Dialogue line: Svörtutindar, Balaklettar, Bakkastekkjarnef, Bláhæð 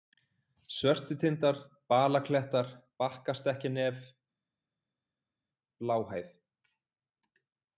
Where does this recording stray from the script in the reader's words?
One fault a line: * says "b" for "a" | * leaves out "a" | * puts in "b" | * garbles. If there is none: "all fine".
all fine